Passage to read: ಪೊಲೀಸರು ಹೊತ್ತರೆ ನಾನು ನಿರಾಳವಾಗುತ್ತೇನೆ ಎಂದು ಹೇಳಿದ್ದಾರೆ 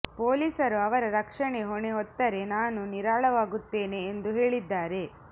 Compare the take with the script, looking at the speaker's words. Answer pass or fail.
fail